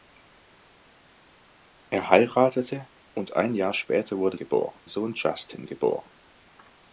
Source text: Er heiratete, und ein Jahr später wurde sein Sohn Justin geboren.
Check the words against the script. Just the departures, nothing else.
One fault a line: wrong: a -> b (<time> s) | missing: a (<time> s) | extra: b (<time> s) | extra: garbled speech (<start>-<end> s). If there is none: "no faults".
wrong: sein -> geboren (4.4 s)